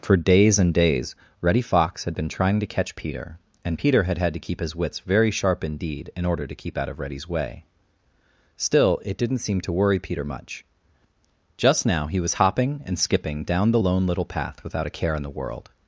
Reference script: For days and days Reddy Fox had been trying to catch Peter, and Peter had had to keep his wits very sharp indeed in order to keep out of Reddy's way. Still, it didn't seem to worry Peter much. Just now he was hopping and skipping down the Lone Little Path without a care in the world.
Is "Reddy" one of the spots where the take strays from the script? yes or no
no